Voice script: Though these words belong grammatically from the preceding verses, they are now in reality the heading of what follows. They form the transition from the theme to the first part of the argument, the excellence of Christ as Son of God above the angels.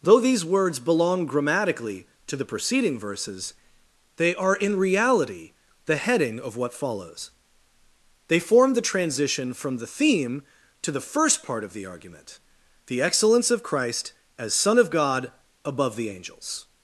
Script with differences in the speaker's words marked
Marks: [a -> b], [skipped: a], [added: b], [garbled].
Though these words belong grammatically [from -> to] the preceding verses, they are [skipped: now] in reality the heading of what follows. They form the transition from the theme to the first part of the argument, the excellence of Christ as Son of God above the angels.